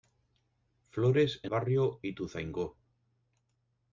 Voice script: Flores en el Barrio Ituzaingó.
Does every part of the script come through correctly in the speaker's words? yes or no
no